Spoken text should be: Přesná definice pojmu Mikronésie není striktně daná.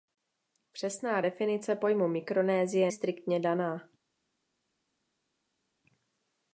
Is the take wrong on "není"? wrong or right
wrong